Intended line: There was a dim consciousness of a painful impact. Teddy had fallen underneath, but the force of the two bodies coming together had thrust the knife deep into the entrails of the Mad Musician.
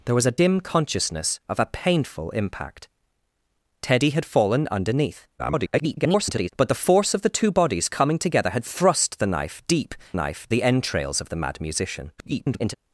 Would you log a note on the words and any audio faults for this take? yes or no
yes